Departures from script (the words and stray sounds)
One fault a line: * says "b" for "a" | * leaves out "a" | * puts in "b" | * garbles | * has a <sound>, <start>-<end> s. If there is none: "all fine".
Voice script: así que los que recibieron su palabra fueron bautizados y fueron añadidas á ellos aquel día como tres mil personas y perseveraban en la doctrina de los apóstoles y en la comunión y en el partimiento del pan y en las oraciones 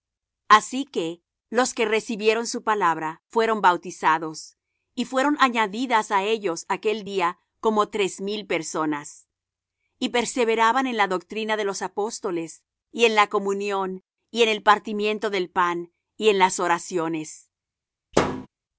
* has a thud, 18.1-18.5 s